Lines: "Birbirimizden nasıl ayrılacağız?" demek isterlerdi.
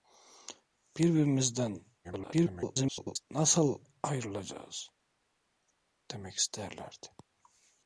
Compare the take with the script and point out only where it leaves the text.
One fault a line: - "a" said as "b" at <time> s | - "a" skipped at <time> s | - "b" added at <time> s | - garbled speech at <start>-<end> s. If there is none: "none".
- garbled speech at 2.0-3.2 s